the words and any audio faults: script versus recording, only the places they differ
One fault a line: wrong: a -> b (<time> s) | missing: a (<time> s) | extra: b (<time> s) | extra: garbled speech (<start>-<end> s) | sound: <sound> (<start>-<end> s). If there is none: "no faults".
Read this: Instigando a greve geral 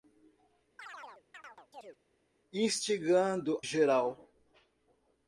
sound: chirp (0.8-2.0 s)
missing: a greve (3.6 s)